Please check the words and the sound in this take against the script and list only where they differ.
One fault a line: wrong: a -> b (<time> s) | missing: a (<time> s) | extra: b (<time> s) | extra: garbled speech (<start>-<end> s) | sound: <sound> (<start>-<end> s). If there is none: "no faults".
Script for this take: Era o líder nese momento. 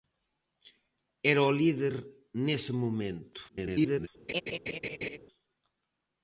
extra: garbled speech (3.5-4.1 s)
sound: laugh (4.3-5.2 s)